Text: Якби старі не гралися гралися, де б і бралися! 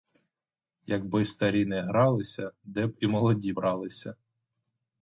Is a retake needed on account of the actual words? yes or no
yes